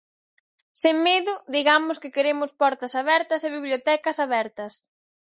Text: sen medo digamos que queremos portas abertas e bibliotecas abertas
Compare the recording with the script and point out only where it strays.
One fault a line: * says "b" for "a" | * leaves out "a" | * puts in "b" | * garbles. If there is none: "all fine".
all fine